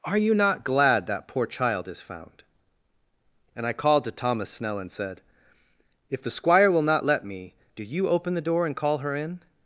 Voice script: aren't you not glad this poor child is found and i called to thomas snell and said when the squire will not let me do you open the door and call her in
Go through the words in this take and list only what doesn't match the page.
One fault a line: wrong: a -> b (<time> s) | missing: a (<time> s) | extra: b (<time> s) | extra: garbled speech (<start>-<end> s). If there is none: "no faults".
wrong: aren't -> are (0.0 s)
wrong: this -> that (1.1 s)
wrong: when -> if (6.1 s)